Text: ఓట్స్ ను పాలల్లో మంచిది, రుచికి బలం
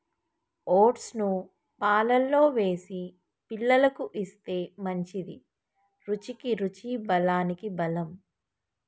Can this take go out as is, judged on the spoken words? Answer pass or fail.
fail